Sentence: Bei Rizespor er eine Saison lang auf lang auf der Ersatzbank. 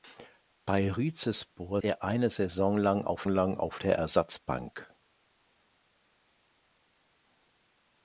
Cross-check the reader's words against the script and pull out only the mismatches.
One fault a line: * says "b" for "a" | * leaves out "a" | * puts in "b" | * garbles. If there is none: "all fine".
all fine